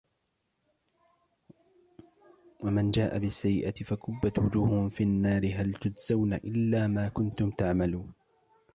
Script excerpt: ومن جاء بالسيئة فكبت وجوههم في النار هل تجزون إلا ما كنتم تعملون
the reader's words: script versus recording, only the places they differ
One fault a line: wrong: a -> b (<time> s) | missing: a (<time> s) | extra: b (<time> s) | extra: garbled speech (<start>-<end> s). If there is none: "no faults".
no faults